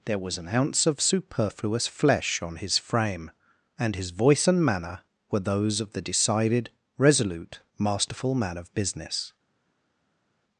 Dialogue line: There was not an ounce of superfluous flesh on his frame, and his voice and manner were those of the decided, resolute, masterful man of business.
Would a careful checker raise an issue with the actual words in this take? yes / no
yes